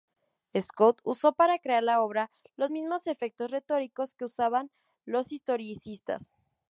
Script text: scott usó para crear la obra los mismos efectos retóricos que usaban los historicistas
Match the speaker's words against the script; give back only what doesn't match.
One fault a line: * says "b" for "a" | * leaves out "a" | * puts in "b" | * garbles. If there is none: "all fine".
all fine